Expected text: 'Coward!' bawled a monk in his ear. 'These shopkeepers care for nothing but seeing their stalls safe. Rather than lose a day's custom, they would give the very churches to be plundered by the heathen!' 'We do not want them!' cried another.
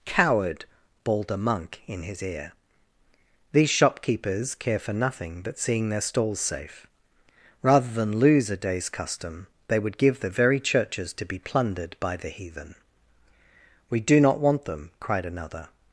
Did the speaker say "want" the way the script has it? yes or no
yes